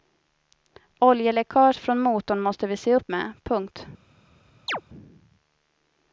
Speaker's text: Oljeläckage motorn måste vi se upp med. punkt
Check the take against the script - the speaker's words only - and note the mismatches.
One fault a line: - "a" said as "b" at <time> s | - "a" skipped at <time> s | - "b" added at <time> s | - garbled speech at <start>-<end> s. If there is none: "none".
- "från" added at 1.8 s